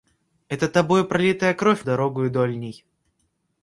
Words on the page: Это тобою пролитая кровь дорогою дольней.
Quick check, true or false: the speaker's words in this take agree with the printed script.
true